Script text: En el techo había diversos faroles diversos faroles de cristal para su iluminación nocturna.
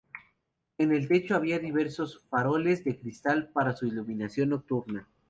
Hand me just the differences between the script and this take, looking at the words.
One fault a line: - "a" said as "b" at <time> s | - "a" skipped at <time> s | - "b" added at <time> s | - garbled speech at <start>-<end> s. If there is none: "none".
- "diversos faroles" skipped at 2.8 s